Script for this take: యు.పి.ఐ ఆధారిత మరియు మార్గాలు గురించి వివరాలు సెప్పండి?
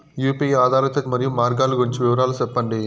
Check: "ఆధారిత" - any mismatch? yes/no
no